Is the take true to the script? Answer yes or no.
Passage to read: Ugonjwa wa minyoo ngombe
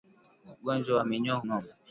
yes